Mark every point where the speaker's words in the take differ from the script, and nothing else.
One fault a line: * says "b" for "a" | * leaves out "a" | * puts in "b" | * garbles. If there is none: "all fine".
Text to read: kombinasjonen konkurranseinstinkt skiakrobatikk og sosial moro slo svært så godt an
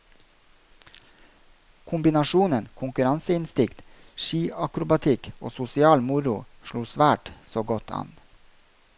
all fine